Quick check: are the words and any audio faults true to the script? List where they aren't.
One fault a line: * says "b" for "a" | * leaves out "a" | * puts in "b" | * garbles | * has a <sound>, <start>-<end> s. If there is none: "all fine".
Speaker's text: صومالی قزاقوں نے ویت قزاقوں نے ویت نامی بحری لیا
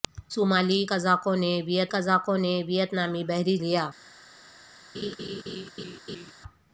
* has a laugh, 4.9-6.3 s